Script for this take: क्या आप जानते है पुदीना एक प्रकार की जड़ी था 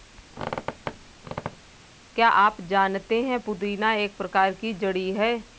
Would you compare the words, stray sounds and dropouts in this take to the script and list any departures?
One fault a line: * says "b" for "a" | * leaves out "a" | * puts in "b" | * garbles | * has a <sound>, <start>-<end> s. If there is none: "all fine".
* has a squeak, 0.3-1.8 s
* says "है" for "था"